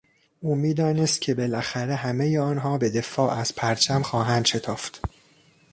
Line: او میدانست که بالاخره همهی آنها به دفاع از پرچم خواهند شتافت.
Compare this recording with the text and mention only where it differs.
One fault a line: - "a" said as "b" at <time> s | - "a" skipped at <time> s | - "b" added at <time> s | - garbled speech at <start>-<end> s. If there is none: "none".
none